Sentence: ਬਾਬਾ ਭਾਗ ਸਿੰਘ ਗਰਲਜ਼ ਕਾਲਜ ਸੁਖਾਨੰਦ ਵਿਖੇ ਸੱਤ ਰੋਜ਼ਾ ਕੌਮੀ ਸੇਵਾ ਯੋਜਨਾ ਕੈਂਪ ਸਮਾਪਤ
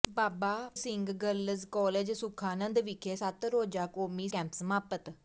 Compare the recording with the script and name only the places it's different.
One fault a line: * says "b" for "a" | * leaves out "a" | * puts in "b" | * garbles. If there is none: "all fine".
* leaves out "ਭਾਗ"
* leaves out "ਸੇਵਾ ਯੋਜਨਾ"